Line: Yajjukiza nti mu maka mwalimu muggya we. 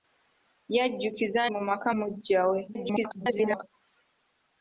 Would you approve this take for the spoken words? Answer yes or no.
no